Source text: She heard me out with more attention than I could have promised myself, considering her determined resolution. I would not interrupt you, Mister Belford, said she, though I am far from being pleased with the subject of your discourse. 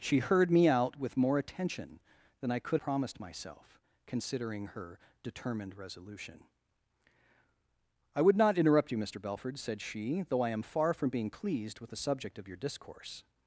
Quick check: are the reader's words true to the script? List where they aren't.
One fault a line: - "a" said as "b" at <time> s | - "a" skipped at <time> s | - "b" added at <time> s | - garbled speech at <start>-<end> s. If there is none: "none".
- "have" skipped at 2.8 s